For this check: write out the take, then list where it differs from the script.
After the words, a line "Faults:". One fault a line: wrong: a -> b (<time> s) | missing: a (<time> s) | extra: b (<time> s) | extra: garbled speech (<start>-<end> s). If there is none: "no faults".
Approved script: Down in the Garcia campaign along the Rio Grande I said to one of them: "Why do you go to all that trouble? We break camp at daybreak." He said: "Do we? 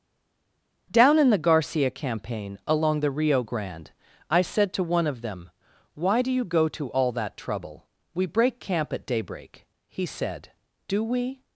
Down in the Garcia campaign along the Rio Grande I said to one of them: "Why do you go to all that trouble? We break camp at daybreak." He said: "Do we?
Faults:
no faults